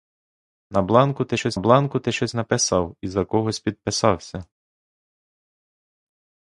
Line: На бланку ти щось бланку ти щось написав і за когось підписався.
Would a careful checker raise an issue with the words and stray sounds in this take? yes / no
no